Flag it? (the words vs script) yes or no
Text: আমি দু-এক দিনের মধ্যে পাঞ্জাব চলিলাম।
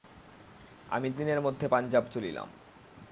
yes